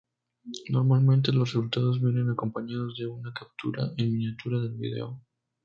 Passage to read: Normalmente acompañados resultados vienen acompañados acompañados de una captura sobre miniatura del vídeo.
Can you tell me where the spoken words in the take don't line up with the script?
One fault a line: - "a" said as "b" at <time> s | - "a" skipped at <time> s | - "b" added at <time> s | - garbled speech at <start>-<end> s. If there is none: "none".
- "acompañados" said as "los" at 1.3 s
- "acompañados" skipped at 3.0 s
- "sobre" said as "en" at 4.0 s